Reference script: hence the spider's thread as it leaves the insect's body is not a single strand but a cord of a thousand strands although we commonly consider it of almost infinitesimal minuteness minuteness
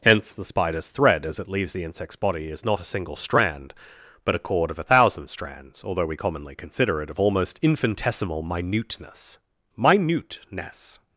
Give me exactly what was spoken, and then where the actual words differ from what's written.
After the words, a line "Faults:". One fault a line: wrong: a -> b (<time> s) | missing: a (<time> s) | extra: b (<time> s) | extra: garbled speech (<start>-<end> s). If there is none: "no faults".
hence the spider's thread as it leaves the insect's body is not a single strand but a cord of a thousand strands although we commonly consider it of almost infinitesimal minuteness minuteness
Faults:
no faults